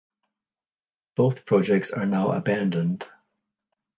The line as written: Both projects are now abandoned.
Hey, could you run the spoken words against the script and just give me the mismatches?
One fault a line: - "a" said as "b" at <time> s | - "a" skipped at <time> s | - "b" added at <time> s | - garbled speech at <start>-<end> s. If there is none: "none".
none